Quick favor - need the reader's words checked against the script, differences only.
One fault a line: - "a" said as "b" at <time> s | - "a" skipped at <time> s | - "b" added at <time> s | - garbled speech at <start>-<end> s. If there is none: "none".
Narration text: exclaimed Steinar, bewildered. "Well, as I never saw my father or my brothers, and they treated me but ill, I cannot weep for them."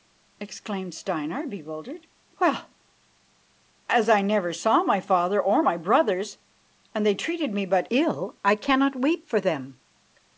none